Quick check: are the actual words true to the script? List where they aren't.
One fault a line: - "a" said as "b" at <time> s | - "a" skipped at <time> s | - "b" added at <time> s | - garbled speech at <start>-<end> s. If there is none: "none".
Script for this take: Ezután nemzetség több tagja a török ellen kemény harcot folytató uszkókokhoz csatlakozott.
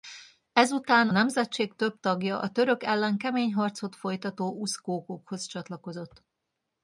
none